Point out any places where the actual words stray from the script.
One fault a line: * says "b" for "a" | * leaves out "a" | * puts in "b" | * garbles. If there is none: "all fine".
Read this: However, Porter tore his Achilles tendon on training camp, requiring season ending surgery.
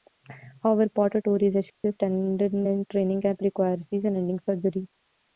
* says "in" for "on"